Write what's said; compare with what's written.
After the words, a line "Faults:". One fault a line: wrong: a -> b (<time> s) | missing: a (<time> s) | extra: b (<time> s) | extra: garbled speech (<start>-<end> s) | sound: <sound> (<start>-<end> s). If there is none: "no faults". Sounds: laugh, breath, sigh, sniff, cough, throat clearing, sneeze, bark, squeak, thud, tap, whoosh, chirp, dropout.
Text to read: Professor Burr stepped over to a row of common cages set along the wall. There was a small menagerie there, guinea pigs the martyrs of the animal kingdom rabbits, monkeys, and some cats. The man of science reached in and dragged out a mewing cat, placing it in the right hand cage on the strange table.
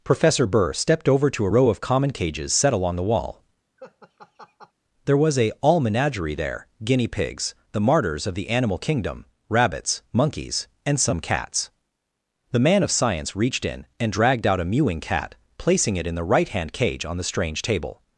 Professor Burr stepped over to a row of common cages set along the wall. There was a all menagerie there, guinea pigs the martyrs of the animal kingdom rabbits, monkeys, and some cats. The man of science reached in and dragged out a mewing cat, placing it in the right hand cage on the strange table.
Faults:
sound: laugh (3.8-4.7 s)
wrong: small -> all (5.6 s)